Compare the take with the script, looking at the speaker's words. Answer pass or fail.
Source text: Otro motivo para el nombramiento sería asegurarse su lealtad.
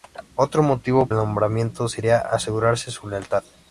fail